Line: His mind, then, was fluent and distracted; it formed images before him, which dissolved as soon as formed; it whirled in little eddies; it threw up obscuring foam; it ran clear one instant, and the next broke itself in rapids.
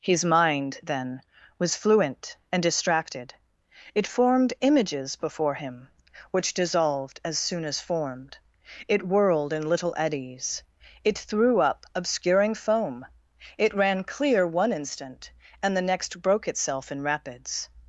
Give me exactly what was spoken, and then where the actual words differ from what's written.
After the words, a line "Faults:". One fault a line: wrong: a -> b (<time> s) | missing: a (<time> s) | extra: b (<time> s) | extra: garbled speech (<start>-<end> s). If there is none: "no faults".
His mind, then, was fluent and distracted; it formed images before him, which dissolved as soon as formed; it whirled in little eddies; it threw up obscuring foam; it ran clear one instant, and the next broke itself in rapids.
Faults:
no faults